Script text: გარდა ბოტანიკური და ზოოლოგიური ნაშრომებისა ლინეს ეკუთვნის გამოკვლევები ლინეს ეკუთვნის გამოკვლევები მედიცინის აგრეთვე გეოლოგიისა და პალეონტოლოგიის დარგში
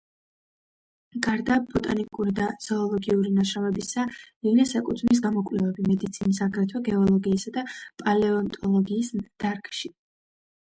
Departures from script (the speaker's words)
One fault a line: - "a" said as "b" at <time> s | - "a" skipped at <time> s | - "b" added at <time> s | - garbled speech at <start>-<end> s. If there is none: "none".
- "ლინეს ეკუთვნის გამოკვლევები" skipped at 5.9 s